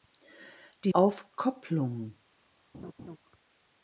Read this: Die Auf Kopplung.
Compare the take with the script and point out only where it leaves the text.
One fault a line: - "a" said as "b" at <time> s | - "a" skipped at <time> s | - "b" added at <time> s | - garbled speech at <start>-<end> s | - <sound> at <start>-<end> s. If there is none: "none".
- laugh at 2.7-3.2 s